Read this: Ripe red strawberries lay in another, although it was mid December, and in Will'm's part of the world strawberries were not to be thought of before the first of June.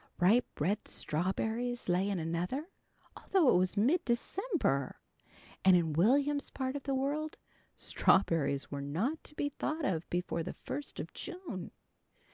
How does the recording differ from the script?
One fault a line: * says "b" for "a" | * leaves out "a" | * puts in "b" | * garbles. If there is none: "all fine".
all fine